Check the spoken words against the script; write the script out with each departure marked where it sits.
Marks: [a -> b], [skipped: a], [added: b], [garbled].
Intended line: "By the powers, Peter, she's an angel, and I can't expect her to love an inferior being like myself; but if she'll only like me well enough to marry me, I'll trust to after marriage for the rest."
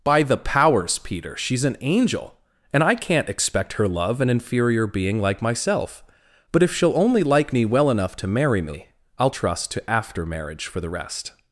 "By the powers, Peter, she's an angel, and I can't expect her [skipped: to] love an inferior being like myself; but if she'll only like me well enough to marry me, I'll trust to after marriage for the rest."